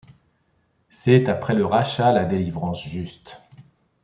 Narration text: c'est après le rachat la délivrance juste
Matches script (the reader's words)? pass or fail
pass